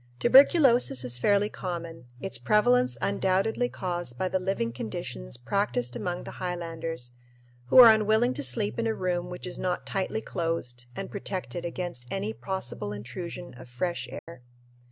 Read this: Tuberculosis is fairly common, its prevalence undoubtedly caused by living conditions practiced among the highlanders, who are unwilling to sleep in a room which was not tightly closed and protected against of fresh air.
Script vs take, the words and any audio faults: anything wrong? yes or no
yes